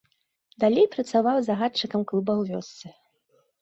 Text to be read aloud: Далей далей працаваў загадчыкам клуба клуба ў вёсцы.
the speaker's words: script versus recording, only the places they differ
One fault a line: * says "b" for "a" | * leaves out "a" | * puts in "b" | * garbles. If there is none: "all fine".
* leaves out "далей"
* leaves out "клуба"